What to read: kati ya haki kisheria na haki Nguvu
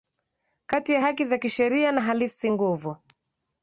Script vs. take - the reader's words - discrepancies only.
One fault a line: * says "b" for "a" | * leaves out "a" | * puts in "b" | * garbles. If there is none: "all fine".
* puts in "za"
* says "halisi" for "haki"